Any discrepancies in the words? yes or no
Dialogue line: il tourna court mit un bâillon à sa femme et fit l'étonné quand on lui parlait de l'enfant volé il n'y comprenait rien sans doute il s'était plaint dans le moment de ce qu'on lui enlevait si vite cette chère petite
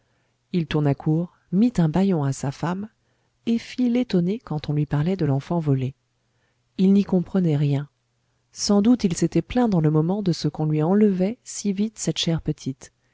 no